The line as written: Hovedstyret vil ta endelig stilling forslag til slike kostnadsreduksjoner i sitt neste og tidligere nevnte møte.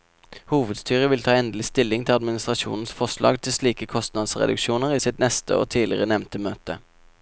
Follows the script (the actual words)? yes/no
no